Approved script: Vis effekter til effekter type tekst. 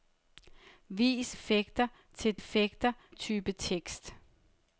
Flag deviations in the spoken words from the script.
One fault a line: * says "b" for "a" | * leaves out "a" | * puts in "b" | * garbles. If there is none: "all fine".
all fine